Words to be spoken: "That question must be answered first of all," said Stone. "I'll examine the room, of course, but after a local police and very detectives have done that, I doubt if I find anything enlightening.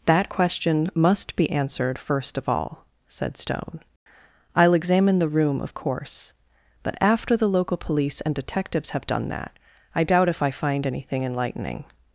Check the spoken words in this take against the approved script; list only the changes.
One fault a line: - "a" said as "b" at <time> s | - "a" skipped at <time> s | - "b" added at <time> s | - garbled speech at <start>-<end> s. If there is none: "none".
- "a" said as "the" at 7.4 s
- "very" skipped at 8.3 s